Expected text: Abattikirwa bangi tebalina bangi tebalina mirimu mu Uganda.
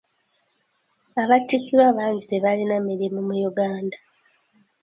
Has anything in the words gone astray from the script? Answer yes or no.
yes